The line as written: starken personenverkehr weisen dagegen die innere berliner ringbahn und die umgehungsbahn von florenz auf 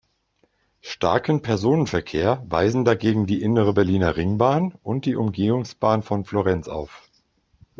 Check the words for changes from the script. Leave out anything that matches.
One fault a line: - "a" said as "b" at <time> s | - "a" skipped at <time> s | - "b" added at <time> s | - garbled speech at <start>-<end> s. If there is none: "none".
none